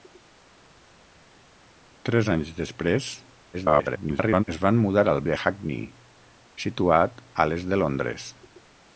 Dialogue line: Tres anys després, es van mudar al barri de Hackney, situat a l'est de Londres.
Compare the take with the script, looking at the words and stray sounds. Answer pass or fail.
fail